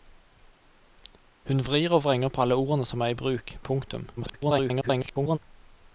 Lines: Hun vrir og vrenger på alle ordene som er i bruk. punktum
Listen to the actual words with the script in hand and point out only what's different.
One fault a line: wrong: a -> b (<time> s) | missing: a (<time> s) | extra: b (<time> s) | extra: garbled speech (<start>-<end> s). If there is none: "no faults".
extra: garbled speech (4.2-5.4 s)